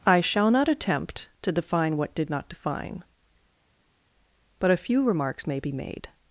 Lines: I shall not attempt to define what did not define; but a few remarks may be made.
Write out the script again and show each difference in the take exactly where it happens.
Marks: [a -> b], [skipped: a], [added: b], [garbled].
I shall not attempt to define what did not define; but a few remarks may be made.